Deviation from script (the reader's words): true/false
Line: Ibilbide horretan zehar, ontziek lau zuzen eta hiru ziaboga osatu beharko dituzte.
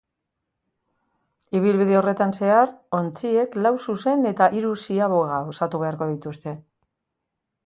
false